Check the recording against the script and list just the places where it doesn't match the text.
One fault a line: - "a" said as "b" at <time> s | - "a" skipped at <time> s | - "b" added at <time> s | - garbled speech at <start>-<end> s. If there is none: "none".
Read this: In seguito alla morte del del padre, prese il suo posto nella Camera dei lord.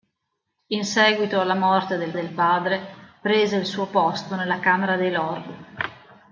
none